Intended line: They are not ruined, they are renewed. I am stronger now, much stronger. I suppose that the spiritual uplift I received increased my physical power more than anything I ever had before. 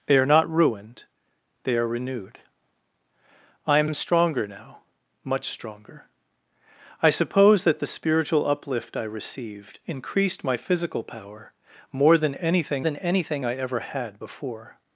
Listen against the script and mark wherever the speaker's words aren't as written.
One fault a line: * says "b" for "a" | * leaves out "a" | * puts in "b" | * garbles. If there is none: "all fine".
* puts in "am"
* puts in "than anything"